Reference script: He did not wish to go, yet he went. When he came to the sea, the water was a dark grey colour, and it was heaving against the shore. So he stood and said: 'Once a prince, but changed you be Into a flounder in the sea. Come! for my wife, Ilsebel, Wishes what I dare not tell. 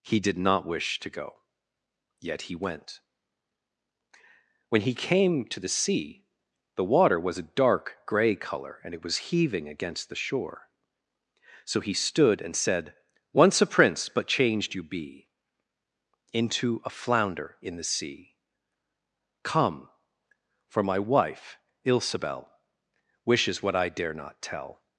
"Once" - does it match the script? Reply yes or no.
yes